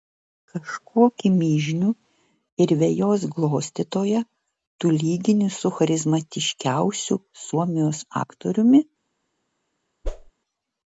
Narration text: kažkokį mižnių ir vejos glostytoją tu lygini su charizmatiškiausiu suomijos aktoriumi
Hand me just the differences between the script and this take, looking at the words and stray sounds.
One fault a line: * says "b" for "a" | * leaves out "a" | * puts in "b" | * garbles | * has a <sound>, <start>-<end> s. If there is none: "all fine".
* has a whoosh, 10.0-10.3 s